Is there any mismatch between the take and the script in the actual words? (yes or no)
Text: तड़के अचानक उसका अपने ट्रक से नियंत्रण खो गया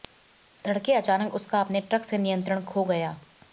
no